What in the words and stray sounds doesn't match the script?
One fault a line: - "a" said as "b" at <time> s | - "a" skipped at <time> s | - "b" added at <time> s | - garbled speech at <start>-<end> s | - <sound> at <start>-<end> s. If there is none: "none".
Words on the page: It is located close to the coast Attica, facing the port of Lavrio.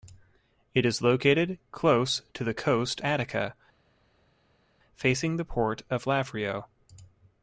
none